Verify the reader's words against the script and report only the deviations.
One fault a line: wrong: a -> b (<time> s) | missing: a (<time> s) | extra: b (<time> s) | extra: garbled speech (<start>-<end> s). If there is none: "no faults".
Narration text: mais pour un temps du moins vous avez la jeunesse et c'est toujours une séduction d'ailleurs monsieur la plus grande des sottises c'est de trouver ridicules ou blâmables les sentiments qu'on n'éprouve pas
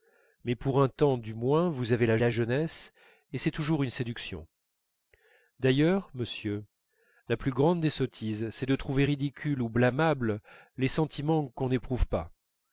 extra: la (2.2 s)